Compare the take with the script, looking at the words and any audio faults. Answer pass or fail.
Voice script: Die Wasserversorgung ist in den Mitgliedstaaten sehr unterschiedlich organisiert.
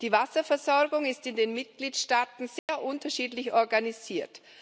fail